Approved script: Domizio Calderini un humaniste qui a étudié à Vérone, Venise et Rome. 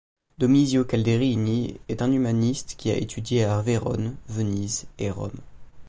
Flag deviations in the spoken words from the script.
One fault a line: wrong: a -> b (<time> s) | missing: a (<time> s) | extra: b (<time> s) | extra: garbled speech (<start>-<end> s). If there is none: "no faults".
extra: est (1.9 s)